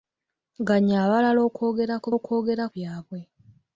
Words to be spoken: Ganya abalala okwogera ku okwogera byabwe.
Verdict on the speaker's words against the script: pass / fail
pass